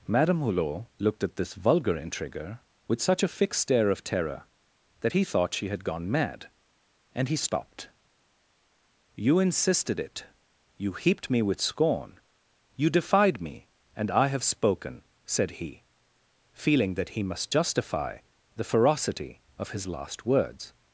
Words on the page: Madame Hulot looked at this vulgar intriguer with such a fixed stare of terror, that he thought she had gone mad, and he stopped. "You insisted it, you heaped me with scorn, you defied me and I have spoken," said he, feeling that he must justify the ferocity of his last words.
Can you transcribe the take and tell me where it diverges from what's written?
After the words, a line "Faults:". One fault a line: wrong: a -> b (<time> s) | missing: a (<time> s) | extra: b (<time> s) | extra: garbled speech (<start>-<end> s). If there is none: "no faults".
Madame Hulot looked at this vulgar intriguer with such a fixed stare of terror, that he thought she had gone mad, and he stopped. "You insisted it, you heaped me with scorn, you defied me and I have spoken," said he, feeling that he must justify the ferocity of his last words.
Faults:
no faults